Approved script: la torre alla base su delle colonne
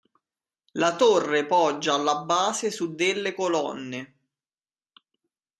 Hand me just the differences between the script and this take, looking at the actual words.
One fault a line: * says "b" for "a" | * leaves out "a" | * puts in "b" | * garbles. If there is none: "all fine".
* puts in "poggia"